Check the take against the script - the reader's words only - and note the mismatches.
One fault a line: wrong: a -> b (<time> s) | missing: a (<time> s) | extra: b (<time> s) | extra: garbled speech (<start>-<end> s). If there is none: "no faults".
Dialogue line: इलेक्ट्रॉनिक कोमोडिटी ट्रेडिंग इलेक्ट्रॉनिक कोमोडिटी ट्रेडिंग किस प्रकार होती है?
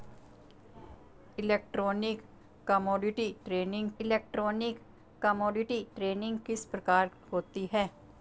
no faults